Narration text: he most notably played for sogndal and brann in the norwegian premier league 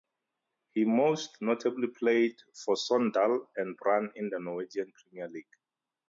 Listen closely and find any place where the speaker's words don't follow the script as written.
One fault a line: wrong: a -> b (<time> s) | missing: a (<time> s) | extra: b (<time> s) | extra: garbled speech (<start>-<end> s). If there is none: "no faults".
no faults